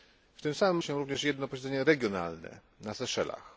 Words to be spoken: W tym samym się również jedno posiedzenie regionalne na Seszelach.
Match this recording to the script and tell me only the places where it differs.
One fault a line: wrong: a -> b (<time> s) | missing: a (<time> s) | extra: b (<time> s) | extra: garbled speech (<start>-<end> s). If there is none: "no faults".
no faults